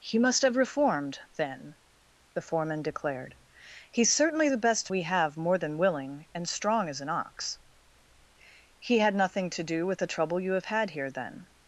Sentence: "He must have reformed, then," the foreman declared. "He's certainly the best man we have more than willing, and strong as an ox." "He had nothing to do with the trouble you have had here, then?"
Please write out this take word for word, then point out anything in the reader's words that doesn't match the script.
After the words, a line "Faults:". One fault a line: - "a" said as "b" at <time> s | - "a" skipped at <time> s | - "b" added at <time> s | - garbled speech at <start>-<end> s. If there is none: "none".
"He must have reformed, then," the foreman declared. "He's certainly the best we have more than willing, and strong as an ox." "He had nothing to do with the trouble you have had here, then?"
Faults:
- "man" skipped at 4.9 s